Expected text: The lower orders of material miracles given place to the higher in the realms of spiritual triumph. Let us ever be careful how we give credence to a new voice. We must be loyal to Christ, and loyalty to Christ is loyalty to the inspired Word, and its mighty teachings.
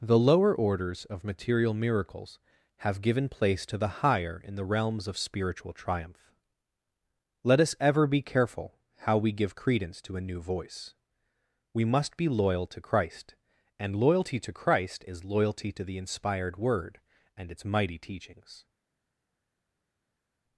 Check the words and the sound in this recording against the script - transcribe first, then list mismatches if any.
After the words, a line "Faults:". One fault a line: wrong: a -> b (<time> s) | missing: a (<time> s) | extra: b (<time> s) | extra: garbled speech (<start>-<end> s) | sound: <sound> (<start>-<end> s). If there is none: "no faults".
The lower orders of material miracles have given place to the higher in the realms of spiritual triumph. Let us ever be careful how we give credence to a new voice. We must be loyal to Christ, and loyalty to Christ is loyalty to the inspired Word, and its mighty teachings.
Faults:
extra: have (2.8 s)